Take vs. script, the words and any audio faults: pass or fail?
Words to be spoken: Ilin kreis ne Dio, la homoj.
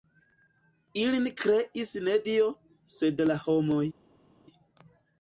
fail